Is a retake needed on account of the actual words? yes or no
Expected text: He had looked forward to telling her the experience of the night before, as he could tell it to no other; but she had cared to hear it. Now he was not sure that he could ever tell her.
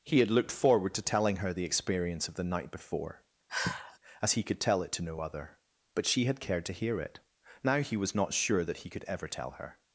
no